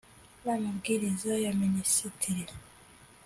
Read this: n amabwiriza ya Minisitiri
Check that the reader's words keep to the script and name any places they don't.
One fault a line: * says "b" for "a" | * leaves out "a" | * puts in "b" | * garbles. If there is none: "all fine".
all fine